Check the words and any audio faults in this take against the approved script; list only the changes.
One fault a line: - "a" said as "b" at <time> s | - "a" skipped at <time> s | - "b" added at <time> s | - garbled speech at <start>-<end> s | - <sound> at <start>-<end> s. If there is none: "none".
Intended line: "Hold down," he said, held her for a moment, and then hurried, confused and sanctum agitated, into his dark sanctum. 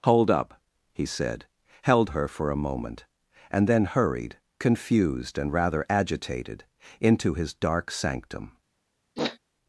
- "down" said as "up" at 0.3 s
- "sanctum" said as "rather" at 5.5 s
- sniff at 9.2-9.4 s